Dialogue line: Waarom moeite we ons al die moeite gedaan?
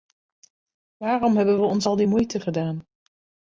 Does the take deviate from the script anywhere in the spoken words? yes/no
yes